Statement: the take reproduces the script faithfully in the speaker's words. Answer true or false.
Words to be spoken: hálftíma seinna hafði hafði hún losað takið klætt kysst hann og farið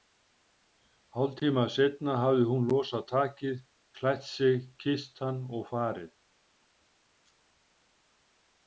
false